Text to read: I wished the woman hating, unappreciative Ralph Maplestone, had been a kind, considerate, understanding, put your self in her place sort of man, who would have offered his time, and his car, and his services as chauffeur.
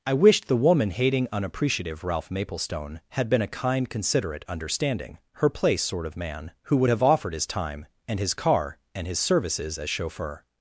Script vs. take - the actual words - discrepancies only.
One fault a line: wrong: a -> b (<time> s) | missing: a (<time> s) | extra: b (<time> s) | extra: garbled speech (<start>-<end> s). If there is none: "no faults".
missing: put your self in (5.2 s)